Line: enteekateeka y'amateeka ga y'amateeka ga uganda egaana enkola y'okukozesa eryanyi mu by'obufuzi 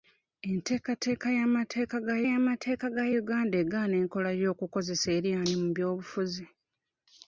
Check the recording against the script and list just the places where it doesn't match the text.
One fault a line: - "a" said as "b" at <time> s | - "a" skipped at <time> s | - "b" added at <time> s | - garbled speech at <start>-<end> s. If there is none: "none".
none